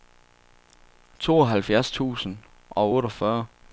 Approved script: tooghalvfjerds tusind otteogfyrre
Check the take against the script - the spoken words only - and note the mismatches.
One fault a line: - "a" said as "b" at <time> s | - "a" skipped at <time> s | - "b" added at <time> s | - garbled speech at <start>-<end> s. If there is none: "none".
- "og" added at 2.7 s